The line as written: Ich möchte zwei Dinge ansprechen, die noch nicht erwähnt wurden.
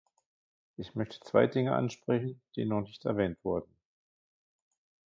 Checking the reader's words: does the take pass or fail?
pass